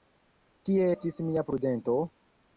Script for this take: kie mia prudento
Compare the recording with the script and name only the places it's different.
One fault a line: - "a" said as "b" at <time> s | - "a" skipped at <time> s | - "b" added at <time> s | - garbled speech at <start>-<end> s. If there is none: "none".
- "estis" added at 0.9 s